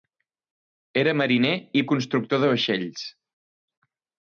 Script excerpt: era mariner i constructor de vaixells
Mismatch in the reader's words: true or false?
false